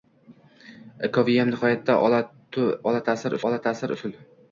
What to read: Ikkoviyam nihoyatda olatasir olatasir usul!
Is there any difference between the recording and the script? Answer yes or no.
no